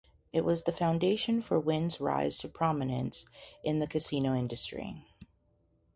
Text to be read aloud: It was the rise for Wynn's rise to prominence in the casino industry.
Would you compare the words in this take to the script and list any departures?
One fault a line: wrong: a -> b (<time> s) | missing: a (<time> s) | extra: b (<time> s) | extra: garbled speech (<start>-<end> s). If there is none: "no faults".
wrong: rise -> foundation (0.7 s)